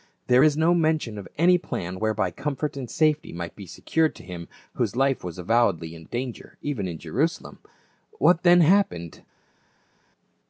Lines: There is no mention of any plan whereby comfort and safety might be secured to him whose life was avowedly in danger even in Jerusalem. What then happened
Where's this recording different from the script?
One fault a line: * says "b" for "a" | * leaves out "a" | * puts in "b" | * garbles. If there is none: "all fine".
all fine